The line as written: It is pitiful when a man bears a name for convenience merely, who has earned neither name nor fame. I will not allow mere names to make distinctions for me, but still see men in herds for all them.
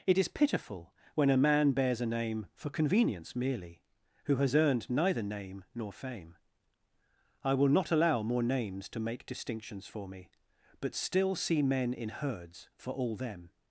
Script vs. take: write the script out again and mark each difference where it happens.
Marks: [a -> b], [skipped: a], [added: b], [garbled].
It is pitiful when a man bears a name for convenience merely, who has earned neither name nor fame. I will not allow [mere -> more] names to make distinctions for me, but still see men in herds for all them.